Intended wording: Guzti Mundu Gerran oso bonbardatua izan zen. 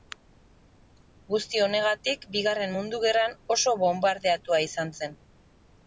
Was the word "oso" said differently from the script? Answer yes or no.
no